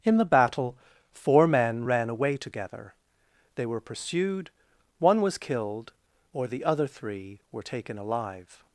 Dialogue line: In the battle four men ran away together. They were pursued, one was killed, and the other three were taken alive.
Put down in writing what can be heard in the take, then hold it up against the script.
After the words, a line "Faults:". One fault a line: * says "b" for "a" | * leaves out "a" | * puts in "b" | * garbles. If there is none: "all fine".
In the battle four men ran away together. They were pursued, one was killed, or the other three were taken alive.
Faults:
* says "or" for "and"